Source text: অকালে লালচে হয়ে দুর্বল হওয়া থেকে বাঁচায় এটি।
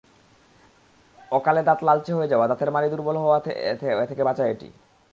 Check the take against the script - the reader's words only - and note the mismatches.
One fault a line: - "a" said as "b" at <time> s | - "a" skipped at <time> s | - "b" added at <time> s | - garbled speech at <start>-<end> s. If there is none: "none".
- "দাঁত" added at 1.7 s
- "যাওয়া দাঁতের মাড়ি" added at 2.3 s